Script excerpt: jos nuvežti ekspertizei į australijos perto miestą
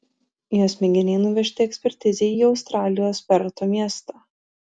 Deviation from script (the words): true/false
true